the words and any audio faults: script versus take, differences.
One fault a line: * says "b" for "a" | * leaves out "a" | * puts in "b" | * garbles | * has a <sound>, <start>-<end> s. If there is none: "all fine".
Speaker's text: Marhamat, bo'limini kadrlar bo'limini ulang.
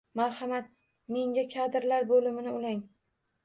* says "menga" for "bo'limini"